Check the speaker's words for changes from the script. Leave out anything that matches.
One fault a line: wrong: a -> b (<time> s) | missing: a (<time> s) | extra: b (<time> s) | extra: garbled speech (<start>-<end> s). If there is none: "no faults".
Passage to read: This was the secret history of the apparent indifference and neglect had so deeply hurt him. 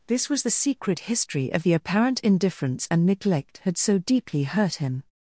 no faults